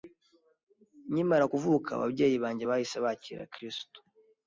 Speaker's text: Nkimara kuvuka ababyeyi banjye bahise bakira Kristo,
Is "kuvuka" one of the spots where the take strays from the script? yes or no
no